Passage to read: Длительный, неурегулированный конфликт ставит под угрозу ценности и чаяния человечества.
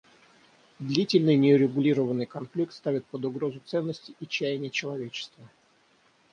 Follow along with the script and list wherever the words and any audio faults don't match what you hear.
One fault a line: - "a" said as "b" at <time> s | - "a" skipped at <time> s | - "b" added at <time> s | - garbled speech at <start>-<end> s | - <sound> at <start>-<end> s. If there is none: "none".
none